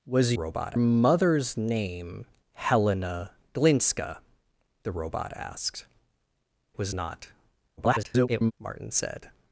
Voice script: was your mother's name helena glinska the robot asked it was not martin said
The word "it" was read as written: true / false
false